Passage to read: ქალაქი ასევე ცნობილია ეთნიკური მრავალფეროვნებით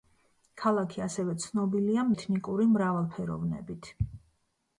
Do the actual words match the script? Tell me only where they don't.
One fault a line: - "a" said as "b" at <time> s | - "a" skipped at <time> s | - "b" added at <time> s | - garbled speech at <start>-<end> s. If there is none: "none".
none